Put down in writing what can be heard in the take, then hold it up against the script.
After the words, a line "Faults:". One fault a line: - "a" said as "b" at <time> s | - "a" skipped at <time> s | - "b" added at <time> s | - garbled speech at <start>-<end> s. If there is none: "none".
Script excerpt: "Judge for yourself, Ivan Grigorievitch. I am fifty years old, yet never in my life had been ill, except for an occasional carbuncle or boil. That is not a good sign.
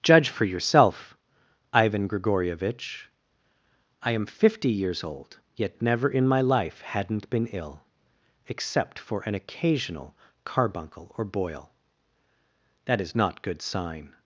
"Judge for yourself, Ivan Grigorievitch. I am fifty years old, yet never in my life hadn't been ill, except for an occasional carbuncle or boil. That is not good sign.
Faults:
- "had" said as "hadn't" at 6.8 s
- "a" skipped at 13.4 s